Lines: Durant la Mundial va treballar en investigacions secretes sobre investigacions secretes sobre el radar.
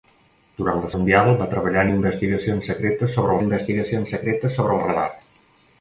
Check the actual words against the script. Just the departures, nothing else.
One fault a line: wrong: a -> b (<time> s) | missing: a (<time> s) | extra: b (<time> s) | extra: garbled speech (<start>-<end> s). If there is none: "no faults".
no faults